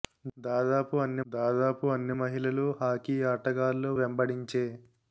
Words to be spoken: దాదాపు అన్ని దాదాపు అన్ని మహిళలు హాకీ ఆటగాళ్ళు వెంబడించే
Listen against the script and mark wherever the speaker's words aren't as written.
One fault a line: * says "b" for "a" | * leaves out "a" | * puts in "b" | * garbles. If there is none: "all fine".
all fine